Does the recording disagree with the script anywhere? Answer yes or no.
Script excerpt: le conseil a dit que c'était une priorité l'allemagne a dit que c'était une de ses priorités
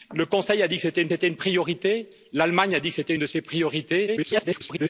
yes